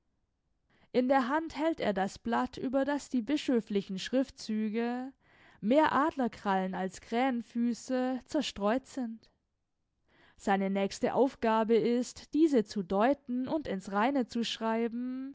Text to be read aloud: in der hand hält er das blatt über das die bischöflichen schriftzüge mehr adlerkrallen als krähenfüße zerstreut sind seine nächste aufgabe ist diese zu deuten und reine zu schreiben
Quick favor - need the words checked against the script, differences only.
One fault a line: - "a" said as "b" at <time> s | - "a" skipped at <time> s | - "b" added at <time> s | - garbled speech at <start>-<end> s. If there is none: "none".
- "ins" added at 13.7 s